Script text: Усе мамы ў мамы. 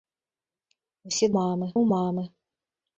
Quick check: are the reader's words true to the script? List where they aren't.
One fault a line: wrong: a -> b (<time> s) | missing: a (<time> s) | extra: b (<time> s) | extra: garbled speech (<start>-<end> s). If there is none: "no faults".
no faults